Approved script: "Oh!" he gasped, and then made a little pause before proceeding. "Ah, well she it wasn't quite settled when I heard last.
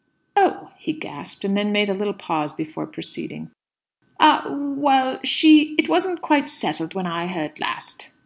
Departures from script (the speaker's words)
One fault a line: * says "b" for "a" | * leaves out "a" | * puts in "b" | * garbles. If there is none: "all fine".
all fine